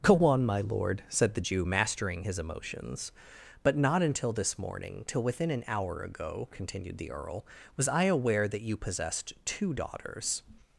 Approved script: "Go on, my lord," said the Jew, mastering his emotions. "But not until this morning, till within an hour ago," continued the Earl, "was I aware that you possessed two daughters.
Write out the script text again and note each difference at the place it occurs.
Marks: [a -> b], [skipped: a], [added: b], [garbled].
"Go on, my lord," said the Jew, mastering his emotions. "But not until this morning, till within an hour ago," continued the Earl, "was I aware that you possessed two daughters.